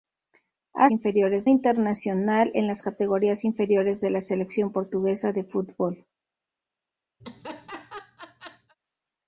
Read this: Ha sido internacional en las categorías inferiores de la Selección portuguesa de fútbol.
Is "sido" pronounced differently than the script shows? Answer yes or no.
yes